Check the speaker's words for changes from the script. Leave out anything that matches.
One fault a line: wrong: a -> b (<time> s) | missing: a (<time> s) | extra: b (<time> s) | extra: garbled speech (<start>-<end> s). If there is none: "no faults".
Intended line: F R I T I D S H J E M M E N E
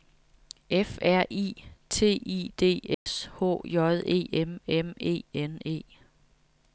no faults